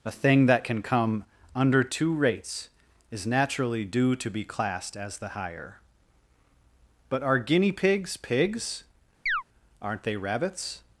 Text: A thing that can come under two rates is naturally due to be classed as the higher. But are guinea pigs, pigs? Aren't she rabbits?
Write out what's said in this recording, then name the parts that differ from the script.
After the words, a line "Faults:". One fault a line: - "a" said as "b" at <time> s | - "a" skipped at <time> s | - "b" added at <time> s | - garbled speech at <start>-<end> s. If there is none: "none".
A thing that can come under two rates is naturally due to be classed as the higher. But are guinea pigs, pigs? Aren't they rabbits?
Faults:
- "she" said as "they" at 10.0 s